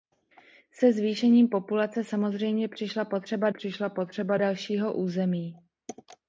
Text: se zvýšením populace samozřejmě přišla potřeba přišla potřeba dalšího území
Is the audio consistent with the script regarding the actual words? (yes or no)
yes